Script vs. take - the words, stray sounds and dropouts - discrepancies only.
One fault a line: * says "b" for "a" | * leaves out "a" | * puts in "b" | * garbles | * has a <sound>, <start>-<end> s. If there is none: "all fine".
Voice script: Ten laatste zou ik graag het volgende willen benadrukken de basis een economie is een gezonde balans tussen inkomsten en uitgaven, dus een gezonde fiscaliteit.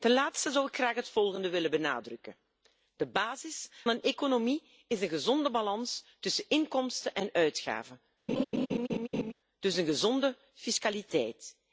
* has a laugh, 8.3-9.3 s